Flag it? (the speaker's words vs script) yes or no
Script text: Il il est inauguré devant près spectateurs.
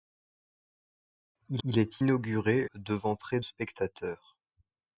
no